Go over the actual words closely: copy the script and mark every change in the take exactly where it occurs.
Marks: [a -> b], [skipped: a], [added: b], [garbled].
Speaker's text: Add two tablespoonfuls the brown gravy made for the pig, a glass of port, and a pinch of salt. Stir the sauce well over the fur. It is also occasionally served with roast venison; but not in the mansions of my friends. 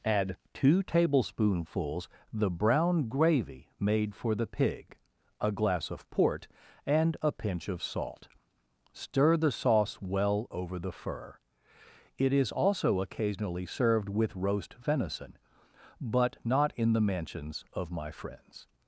Add two tablespoonfuls the brown gravy made for the pig, a glass of port, and a pinch of salt. Stir the sauce well over the fur. It is also occasionally served with roast venison; but not in the mansions of my friends.